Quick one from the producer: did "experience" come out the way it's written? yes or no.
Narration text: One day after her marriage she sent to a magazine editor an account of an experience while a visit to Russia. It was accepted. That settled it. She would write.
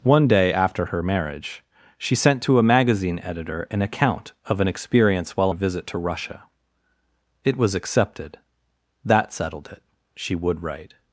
yes